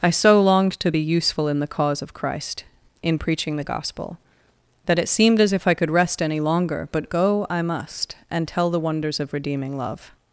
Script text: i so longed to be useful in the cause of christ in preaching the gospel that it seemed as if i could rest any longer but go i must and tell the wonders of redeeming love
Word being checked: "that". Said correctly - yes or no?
yes